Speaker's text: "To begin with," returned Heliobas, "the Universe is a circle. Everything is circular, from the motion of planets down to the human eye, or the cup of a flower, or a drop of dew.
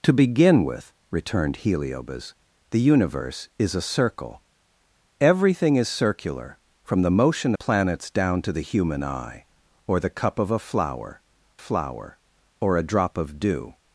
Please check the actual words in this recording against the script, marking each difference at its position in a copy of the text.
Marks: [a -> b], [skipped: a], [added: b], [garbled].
"To begin with," returned Heliobas, "the Universe is a circle. Everything is circular, from the motion [skipped: of] planets down to the human eye, or the cup of a flower, [added: flower] or a drop of dew.